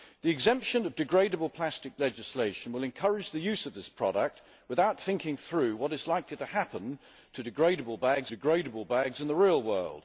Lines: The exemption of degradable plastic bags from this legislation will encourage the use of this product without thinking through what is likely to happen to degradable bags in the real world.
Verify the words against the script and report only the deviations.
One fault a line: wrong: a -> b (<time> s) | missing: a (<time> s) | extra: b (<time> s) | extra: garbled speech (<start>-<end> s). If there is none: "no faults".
missing: bags from this (2.0 s)
extra: degradable bags (8.3 s)